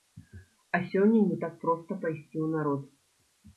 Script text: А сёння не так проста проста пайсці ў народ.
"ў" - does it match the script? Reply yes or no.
yes